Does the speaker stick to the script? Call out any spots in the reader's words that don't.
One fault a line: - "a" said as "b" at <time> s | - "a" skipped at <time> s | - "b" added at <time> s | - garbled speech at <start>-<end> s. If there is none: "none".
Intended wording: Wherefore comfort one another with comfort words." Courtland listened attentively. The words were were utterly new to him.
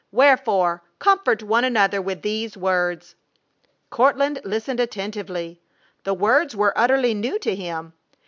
- "comfort" said as "these" at 2.2 s
- "were" skipped at 6.7 s